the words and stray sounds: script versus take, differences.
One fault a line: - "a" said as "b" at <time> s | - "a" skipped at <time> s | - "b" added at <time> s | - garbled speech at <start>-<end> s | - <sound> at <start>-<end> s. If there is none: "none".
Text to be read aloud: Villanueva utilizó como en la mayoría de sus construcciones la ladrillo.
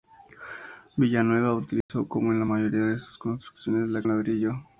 - dropout at 1.8-1.9 s